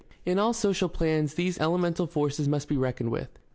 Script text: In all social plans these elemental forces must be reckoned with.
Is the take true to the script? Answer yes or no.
yes